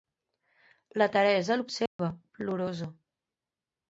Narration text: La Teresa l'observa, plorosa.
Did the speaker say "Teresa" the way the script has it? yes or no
yes